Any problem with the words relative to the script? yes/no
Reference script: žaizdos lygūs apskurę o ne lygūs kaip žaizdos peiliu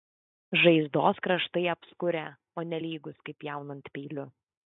yes